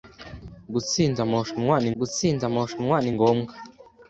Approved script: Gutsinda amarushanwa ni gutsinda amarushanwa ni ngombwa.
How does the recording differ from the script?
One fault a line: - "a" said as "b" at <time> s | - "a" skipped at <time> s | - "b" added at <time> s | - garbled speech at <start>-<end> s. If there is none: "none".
none